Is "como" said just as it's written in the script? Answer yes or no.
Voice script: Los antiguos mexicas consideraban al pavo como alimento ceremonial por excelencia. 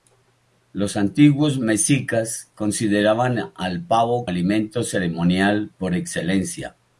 no